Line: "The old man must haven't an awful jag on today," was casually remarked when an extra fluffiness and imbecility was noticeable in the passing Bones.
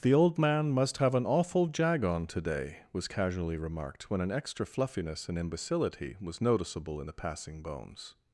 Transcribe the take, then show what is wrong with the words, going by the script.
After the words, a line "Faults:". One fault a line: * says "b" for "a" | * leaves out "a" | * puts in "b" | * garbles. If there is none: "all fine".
"The old man must have an awful jag on today," was casually remarked when an extra fluffiness and imbecility was noticeable in the passing Bones.
Faults:
* says "have" for "haven't"